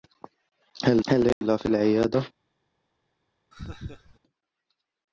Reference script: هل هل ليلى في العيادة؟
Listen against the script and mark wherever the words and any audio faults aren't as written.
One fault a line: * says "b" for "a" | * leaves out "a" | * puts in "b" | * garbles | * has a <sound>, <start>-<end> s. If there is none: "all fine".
* has a dropout, 1.3-1.4 s
* has a laugh, 3.5-4.2 s